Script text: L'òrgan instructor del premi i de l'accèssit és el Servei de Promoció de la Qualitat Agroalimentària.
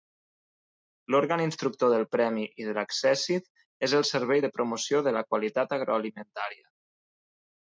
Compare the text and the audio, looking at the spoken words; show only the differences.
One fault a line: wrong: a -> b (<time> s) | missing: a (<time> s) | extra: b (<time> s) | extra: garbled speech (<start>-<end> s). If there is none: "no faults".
no faults